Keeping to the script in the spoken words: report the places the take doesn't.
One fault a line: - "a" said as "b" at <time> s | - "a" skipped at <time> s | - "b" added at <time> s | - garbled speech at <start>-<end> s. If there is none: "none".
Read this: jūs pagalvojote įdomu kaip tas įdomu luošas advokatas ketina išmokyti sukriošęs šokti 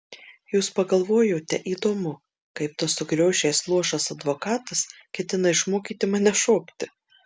- "įdomu" said as "sukriošęs" at 3.0 s
- "sukriošęs" said as "mane" at 6.2 s